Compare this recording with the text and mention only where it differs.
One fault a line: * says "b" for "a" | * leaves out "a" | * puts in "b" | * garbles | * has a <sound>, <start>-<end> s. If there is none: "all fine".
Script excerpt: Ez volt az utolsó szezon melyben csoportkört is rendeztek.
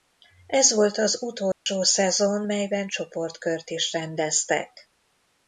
* has a dropout, 1.5-1.7 s